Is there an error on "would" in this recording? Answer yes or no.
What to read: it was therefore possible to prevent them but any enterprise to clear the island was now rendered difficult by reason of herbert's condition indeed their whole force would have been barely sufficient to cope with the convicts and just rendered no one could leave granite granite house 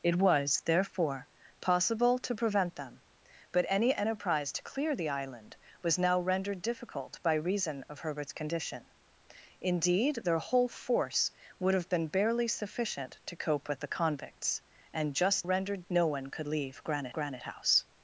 no